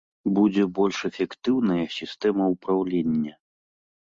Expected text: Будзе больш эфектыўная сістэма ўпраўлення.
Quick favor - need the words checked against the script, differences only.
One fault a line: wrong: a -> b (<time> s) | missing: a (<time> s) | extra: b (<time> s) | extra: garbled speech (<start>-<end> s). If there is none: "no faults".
no faults